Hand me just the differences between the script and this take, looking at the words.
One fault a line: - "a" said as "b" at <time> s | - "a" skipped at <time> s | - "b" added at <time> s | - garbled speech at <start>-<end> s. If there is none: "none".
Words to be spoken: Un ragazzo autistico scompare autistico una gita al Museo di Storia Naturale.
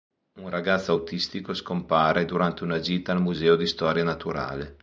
- "autistico" said as "durante" at 2.2 s